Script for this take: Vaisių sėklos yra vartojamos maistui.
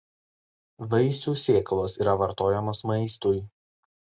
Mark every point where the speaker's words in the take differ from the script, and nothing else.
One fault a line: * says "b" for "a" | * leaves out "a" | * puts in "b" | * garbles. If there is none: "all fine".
all fine